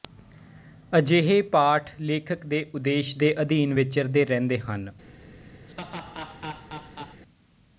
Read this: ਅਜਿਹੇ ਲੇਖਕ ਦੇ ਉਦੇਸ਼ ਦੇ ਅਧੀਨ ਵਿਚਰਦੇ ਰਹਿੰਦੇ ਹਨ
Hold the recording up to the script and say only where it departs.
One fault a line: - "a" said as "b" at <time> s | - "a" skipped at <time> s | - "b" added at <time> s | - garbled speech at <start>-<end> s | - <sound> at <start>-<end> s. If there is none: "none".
- "ਪਾਠ" added at 1.5 s
- laugh at 5.7-7.2 s